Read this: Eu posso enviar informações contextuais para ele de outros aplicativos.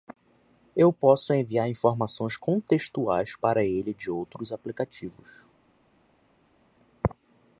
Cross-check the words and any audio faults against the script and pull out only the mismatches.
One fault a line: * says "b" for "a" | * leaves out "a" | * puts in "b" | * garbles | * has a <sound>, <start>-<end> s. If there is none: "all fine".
all fine